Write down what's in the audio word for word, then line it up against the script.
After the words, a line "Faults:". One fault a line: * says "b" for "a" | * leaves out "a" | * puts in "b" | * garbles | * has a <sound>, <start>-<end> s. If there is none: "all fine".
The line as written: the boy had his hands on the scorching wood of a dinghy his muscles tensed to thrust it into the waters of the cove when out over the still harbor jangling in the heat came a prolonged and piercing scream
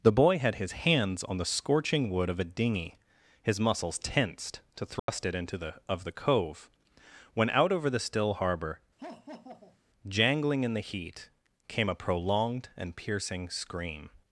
the boy had his hands on the scorching wood of a dinghy his muscles tensed to thrust it into the of the cove when out over the still harbor jangling in the heat came a prolonged and piercing scream
Faults:
* has a dropout, 5.0-5.1 s
* leaves out "waters"
* has a laugh, 9.0-9.8 s